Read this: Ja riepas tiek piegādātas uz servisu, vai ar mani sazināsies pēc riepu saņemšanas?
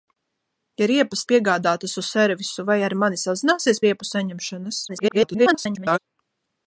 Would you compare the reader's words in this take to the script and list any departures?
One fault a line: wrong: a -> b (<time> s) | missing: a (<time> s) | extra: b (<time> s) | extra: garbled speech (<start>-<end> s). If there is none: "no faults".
missing: tiek (1.2 s)
missing: pēc (3.8 s)
extra: garbled speech (4.9-6.0 s)